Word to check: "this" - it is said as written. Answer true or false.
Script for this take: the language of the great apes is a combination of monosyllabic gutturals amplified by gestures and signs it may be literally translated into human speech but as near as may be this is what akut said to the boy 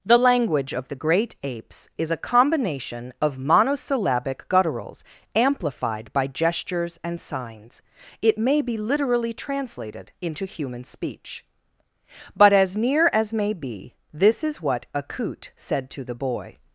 true